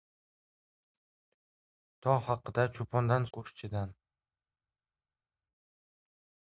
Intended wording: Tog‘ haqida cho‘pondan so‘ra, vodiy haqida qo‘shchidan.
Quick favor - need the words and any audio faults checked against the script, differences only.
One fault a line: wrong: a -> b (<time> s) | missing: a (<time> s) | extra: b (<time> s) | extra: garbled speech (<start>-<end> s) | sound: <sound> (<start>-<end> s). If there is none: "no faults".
missing: so‘ra vodiy haqida (3.3 s)